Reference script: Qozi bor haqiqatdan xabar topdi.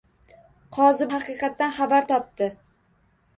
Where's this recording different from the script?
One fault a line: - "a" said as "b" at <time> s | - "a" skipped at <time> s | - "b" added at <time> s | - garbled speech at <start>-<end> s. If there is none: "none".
- "bor" skipped at 1.1 s